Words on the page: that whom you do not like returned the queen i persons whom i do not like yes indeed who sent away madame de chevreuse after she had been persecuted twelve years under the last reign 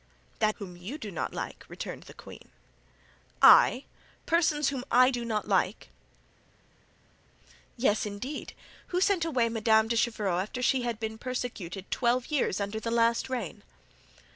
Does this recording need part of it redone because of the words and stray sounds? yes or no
no